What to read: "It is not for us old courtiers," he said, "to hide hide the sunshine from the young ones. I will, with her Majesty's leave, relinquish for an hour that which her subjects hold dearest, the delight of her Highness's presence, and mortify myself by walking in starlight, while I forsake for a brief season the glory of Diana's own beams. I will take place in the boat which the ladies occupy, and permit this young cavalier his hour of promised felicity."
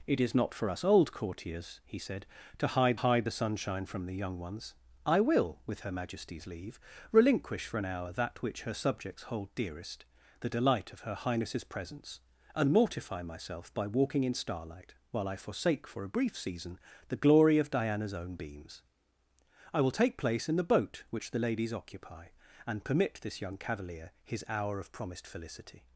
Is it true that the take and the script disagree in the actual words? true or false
false